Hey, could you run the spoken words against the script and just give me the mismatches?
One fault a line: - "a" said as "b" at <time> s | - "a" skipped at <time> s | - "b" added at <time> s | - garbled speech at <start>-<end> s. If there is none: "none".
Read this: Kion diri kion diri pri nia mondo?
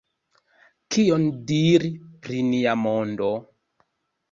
- "kion diri" skipped at 1.9 s